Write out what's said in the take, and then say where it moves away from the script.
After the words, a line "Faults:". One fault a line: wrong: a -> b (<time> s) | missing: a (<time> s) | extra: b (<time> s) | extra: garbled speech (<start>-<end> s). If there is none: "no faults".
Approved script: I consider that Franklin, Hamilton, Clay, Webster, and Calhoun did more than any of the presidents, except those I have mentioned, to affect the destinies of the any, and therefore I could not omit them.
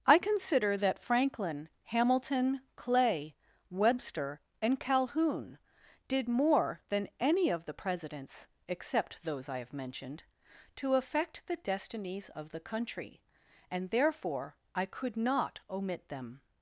I consider that Franklin, Hamilton, Clay, Webster, and Calhoun did more than any of the presidents, except those I have mentioned, to affect the destinies of the country, and therefore I could not omit them.
Faults:
wrong: any -> country (12.6 s)